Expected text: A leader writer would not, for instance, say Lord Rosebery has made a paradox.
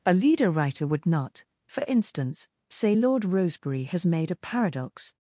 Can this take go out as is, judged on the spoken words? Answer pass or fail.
pass